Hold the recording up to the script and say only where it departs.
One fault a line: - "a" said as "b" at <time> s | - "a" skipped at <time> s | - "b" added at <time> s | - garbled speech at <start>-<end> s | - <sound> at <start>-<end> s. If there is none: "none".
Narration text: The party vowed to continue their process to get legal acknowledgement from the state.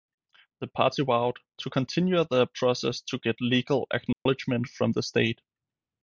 - dropout at 4.1-4.3 s